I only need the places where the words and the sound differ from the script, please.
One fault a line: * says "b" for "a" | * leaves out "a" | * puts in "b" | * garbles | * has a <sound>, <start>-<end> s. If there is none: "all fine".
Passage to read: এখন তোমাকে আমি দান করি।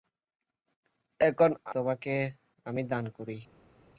all fine